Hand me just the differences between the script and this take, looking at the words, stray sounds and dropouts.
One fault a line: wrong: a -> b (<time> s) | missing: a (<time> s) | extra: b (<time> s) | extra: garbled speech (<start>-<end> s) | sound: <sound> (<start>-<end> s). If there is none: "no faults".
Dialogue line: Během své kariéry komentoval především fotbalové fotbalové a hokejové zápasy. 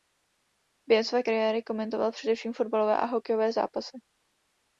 missing: fotbalové (3.0 s)